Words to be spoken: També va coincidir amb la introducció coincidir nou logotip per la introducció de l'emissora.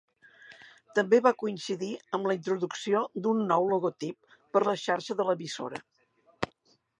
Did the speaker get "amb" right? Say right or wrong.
right